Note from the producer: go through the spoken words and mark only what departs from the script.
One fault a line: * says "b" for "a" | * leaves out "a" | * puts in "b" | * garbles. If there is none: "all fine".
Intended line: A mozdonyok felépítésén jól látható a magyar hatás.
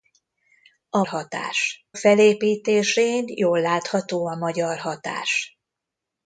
* says "hatás" for "mozdonyok"